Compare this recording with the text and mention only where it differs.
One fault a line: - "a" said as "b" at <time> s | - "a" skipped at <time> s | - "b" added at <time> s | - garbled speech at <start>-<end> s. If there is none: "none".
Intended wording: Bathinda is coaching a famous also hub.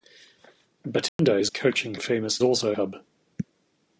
none